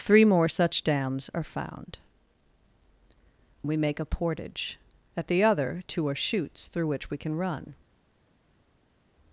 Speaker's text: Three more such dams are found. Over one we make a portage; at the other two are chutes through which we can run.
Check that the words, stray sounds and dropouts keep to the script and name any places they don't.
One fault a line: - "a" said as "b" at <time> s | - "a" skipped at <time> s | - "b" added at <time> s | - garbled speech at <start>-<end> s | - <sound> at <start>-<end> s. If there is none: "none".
- "Over one" skipped at 2.0 s